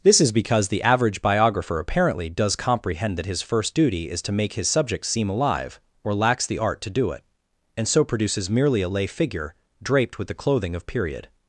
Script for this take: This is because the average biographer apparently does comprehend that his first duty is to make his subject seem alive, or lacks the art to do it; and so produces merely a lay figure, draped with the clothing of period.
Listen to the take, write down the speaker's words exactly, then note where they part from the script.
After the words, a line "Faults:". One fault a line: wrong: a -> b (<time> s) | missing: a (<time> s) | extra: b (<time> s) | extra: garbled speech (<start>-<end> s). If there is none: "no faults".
This is because the average biographer apparently does comprehend that his first duty is to make his subject seem alive, or lacks the art to do it; and so produces merely a lay figure, draped with the clothing of period.
Faults:
no faults